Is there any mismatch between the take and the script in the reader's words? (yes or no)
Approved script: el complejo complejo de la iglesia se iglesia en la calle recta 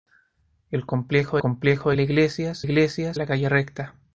no